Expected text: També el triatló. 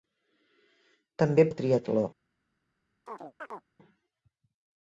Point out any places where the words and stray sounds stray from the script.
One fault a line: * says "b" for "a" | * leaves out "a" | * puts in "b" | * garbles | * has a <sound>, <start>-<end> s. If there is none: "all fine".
* has a chirp, 3.1-3.7 s